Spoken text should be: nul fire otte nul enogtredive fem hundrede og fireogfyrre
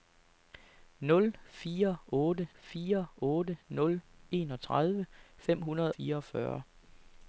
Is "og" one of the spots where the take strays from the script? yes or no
yes